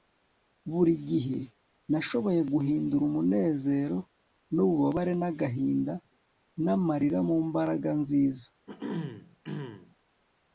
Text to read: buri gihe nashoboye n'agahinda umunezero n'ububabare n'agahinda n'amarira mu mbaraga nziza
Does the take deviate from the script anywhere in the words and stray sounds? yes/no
yes